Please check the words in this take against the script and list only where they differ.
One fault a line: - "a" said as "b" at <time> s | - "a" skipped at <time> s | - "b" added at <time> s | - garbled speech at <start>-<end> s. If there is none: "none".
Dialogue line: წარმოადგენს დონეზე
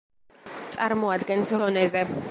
none